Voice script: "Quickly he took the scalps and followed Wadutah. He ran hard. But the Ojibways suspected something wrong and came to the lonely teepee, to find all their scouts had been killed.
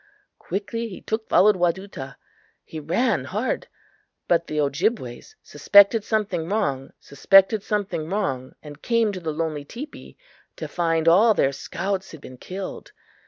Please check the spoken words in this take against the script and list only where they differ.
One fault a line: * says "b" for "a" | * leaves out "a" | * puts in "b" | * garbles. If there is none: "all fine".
* leaves out "the scalps and"
* puts in "suspected something wrong"